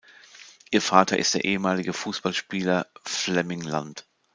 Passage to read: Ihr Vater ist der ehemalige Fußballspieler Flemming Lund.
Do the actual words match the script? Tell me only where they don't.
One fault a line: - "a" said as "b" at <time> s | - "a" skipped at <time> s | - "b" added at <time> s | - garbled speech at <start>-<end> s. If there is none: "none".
none